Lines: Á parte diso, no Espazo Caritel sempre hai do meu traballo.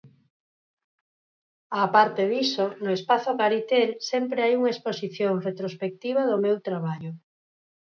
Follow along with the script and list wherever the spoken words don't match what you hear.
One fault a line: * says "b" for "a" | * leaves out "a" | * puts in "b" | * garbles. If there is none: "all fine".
* puts in "unha exposición retrospectiva"